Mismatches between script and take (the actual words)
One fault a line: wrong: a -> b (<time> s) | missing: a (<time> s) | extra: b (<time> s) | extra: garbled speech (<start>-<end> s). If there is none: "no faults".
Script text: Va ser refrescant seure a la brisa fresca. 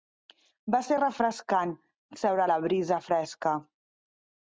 no faults